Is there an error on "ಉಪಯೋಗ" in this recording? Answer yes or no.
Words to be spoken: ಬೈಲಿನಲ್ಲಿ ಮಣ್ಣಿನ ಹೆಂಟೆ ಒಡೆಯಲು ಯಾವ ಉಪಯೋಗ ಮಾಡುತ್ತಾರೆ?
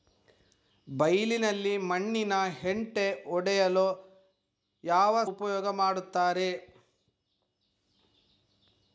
no